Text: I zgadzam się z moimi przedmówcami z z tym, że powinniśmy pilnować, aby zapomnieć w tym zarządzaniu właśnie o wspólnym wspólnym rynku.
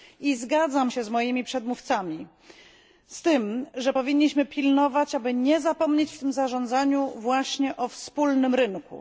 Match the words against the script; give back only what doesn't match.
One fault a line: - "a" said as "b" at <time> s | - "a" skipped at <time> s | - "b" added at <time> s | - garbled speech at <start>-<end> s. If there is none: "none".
- "z" skipped at 3.2 s
- "nie" added at 5.3 s
- "wspólnym" skipped at 8.5 s